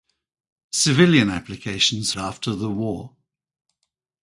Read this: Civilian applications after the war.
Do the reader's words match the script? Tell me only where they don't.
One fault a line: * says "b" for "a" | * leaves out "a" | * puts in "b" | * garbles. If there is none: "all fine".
all fine